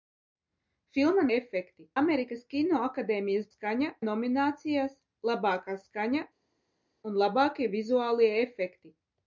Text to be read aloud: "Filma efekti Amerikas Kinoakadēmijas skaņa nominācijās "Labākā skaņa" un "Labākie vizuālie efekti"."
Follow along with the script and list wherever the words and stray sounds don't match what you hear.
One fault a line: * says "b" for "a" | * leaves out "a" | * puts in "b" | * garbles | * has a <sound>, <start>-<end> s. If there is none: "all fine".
all fine